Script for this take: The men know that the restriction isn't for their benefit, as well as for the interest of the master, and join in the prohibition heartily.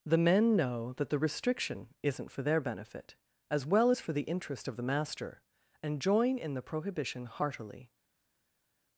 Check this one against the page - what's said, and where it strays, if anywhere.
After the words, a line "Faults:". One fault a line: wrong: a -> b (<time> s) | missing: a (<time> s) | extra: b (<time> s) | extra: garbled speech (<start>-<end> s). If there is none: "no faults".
The men know that the restriction isn't for their benefit, as well as for the interest of the master, and join in the prohibition heartily.
Faults:
no faults